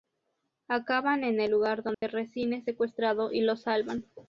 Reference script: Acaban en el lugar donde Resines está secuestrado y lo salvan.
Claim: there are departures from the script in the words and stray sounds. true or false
true